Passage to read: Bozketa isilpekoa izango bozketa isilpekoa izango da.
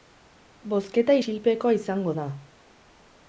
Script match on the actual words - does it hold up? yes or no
no